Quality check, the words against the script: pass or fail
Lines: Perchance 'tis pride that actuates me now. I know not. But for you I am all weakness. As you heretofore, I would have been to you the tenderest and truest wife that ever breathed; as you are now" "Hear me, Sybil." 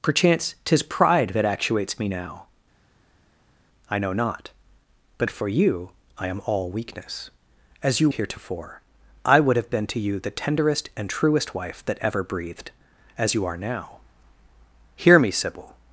pass